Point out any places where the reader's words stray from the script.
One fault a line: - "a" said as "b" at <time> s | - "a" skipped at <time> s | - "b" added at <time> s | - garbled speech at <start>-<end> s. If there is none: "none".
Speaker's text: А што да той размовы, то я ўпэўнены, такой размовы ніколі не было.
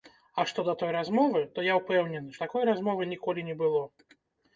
none